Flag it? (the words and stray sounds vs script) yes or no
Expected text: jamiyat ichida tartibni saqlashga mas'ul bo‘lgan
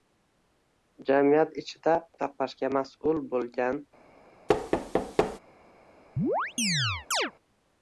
yes